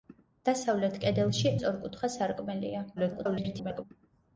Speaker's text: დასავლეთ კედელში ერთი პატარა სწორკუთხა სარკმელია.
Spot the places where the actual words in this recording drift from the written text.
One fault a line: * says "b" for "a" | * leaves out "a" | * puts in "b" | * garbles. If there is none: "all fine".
* leaves out "ერთი პატარა"
* garbles